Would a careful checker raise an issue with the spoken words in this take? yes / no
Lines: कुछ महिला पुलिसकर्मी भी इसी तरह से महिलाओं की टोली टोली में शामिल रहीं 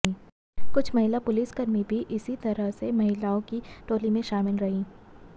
yes